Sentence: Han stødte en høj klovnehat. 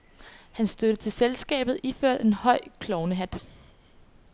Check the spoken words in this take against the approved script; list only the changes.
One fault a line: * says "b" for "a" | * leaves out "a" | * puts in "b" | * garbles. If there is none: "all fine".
* puts in "til selskabet iført"